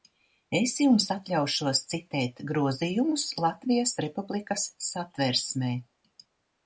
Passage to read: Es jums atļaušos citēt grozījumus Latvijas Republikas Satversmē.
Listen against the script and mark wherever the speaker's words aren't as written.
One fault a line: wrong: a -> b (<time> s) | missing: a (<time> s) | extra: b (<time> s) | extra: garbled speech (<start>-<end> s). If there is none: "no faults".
no faults